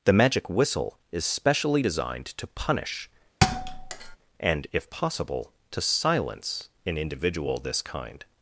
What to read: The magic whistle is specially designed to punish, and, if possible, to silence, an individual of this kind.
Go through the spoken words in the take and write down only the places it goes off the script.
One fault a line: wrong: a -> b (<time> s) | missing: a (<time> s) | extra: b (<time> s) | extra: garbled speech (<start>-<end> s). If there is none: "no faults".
missing: of (7.6 s)